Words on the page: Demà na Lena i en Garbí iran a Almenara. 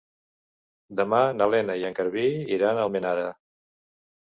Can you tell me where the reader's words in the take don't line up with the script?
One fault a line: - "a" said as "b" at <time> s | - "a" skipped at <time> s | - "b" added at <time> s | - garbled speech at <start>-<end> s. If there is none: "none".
none